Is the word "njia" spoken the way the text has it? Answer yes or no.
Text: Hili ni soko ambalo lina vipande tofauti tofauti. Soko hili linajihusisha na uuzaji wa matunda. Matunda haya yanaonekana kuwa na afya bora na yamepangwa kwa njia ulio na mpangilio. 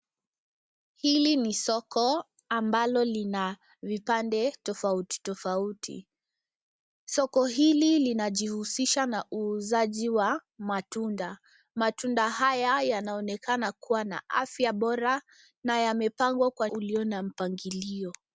no